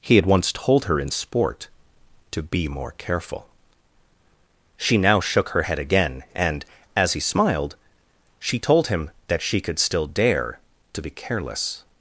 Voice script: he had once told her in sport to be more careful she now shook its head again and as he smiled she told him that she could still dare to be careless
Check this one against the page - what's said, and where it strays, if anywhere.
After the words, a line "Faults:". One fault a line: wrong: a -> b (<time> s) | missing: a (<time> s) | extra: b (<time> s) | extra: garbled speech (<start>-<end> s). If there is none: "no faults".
he had once told her in sport to be more careful she now shook her head again and as he smiled she told him that she could still dare to be careless
Faults:
wrong: its -> her (5.5 s)